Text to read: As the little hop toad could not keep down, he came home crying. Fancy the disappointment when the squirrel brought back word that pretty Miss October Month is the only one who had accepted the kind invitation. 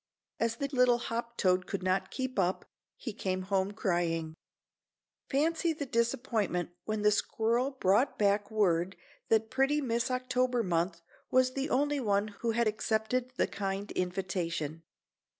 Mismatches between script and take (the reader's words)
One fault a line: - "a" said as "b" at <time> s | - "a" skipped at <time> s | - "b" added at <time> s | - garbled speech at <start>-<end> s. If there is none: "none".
- "down" said as "up" at 2.4 s
- "is" said as "was" at 11.3 s